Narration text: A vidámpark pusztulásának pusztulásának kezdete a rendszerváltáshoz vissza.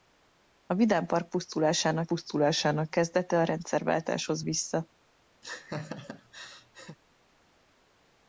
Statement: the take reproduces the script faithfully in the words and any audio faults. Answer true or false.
false